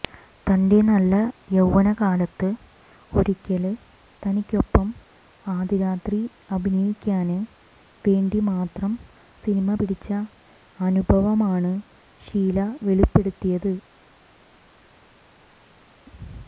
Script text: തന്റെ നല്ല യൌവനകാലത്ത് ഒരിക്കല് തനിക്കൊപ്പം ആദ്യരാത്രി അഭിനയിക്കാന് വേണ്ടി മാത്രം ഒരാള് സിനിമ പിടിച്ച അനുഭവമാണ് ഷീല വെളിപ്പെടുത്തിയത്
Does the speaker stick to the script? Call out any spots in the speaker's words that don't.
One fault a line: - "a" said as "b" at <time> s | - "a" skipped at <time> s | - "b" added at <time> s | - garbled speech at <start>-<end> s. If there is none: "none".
- "ഒരാള്" skipped at 8.9 s